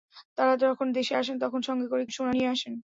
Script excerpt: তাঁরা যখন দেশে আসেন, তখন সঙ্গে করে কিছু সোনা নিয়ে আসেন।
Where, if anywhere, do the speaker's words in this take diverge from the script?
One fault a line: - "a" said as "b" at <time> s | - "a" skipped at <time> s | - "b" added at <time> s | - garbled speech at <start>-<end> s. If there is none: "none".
- "কিছু" skipped at 2.0 s